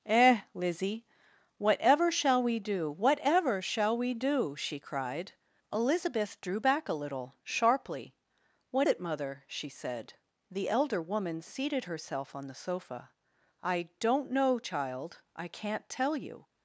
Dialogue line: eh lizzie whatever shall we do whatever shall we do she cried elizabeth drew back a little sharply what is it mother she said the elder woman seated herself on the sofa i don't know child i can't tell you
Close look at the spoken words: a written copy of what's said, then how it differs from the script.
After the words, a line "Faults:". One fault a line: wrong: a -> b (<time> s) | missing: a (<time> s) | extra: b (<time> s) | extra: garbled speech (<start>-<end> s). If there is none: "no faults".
eh lizzie whatever shall we do whatever shall we do she cried elizabeth drew back a little sharply what it mother she said the elder woman seated herself on the sofa i don't know child i can't tell you
Faults:
missing: is (8.9 s)